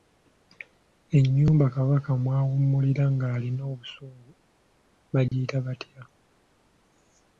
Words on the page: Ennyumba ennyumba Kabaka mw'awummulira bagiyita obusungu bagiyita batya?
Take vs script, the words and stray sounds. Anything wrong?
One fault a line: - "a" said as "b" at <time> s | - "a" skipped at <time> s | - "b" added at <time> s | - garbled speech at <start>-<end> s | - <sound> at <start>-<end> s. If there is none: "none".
- "ennyumba" skipped at 1.6 s
- "bagiyita" said as "ng'alina" at 3.1 s
- dropout at 5.3-5.3 s